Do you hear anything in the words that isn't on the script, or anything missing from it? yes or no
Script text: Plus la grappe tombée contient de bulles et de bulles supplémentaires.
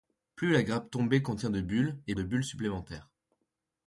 no